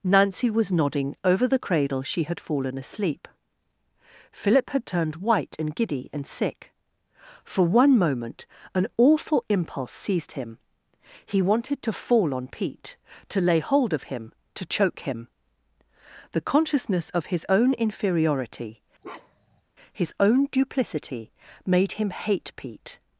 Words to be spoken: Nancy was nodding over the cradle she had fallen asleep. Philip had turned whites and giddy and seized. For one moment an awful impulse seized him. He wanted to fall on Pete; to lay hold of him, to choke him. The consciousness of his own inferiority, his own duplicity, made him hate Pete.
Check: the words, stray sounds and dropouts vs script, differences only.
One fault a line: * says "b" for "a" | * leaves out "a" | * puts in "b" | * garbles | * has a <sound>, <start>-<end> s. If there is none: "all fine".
* says "white" for "whites"
* says "sick" for "seized"
* has a bark, 19.0-19.6 s